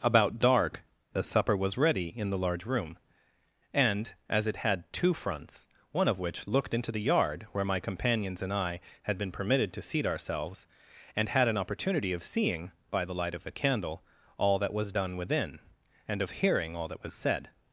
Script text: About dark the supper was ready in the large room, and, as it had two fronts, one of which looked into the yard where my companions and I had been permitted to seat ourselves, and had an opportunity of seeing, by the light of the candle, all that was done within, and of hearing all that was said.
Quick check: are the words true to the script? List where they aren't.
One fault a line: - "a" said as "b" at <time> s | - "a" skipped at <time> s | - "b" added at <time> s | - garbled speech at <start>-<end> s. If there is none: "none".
none